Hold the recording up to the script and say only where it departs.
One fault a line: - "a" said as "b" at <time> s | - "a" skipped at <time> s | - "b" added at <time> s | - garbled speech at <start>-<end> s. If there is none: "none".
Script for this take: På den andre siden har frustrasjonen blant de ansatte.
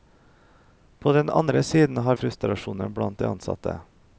none